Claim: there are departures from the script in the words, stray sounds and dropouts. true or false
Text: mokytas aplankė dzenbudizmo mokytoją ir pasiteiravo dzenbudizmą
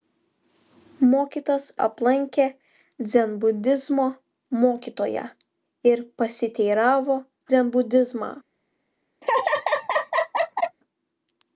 true